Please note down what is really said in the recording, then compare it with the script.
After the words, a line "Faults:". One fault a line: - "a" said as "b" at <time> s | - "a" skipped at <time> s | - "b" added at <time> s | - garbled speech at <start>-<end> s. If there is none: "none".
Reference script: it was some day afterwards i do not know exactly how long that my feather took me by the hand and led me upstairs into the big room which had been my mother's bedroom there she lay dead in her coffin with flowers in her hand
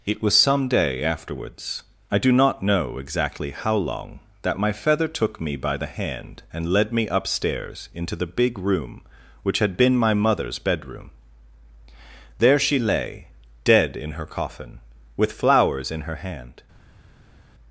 it was some day afterwards i do not know exactly how long that my feather took me by the hand and led me upstairs into the big room which had been my mother's bedroom there she lay dead in her coffin with flowers in her hand
Faults:
none